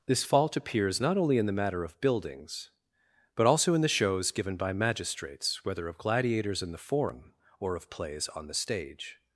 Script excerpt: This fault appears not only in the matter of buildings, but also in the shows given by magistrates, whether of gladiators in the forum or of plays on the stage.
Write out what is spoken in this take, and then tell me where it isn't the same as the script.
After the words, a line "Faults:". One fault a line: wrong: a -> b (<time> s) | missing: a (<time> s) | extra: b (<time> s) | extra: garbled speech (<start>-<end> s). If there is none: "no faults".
This fault appears not only in the matter of buildings, but also in the shows given by magistrates, whether of gladiators in the forum or of plays on the stage.
Faults:
no faults